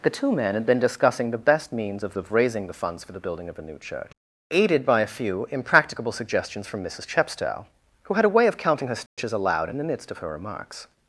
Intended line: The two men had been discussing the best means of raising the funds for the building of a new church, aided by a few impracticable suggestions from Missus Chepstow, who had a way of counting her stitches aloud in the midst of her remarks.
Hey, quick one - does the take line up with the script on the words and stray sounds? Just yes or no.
no